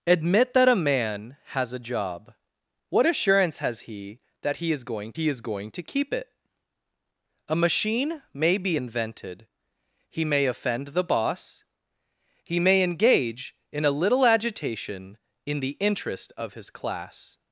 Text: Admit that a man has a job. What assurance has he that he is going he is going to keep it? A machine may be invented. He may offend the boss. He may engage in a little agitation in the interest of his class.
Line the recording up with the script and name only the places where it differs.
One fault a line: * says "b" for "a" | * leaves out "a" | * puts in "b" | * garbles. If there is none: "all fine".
all fine